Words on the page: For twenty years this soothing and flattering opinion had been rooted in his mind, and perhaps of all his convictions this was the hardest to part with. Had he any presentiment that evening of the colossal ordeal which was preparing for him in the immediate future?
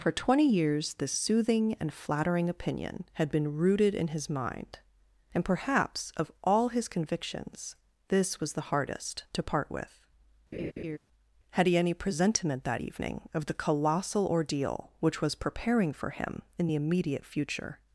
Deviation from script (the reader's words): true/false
false